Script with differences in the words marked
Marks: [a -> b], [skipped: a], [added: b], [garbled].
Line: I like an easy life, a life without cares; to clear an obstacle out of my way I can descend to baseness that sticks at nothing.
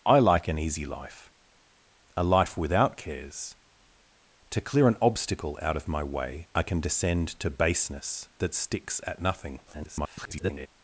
I like an easy life, a life without cares; to clear an obstacle out of my way I can descend to baseness that sticks at nothing. [garbled]